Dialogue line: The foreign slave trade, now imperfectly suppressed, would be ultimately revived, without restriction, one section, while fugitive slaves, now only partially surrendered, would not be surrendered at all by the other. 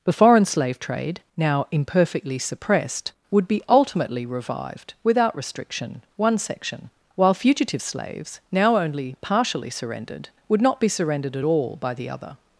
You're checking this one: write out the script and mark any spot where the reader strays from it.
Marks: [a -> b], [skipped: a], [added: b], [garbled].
The foreign slave trade, now imperfectly suppressed, would be ultimately revived, without restriction, one section, while fugitive slaves, now only partially surrendered, would not be surrendered at all by the other.